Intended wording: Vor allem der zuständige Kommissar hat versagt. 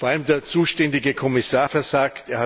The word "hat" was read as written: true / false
false